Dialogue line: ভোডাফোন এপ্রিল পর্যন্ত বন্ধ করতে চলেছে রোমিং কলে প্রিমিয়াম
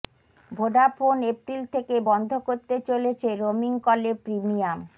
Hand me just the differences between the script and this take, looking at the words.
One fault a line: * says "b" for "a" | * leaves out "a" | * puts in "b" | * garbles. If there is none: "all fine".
* says "থেকে" for "পর্যন্ত"